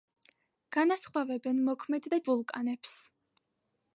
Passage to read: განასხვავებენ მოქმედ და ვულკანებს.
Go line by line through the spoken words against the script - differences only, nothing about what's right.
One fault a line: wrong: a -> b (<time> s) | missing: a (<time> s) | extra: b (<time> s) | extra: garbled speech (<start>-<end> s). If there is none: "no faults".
no faults